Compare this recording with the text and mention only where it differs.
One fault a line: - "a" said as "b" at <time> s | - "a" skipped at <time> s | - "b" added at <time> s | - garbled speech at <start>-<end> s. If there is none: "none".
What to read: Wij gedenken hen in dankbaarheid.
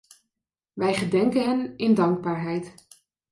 none